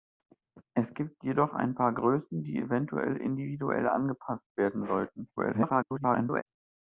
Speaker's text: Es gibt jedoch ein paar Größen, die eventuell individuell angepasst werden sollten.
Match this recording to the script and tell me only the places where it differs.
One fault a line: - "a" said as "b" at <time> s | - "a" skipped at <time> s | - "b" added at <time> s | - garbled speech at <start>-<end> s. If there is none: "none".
- garbled speech at 5.4-6.4 s